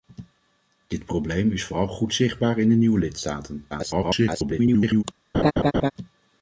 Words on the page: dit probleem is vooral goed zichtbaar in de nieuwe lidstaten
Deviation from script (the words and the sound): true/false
true